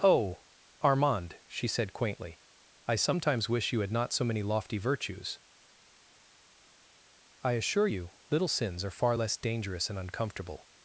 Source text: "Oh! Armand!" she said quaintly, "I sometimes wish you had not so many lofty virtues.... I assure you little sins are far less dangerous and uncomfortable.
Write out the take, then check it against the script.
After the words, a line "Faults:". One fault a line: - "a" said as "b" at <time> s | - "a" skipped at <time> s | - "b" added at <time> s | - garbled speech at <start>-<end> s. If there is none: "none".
"Oh! Armand!" she said quaintly, "I sometimes wish you had not so many lofty virtues.... I assure you little sins are far less dangerous and uncomfortable.
Faults:
none